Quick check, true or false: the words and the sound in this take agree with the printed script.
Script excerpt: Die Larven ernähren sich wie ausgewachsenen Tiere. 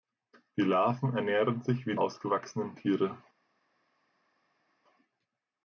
true